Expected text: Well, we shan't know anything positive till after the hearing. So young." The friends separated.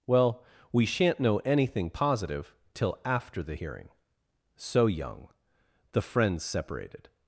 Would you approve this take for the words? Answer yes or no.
yes